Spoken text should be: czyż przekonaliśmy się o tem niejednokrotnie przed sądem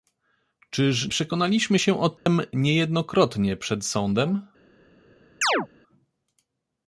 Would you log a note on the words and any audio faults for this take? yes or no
yes